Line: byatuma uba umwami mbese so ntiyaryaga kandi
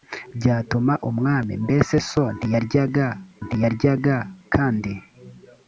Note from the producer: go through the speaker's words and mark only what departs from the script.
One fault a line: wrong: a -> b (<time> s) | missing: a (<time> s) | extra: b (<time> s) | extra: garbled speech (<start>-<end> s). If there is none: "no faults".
missing: uba (0.9 s)
extra: ntiyaryaga (3.4 s)